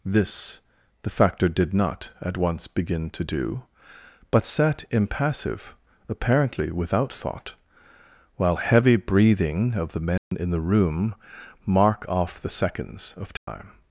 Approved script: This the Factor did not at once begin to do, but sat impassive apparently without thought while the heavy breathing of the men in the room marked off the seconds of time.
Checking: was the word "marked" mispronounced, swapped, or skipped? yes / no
yes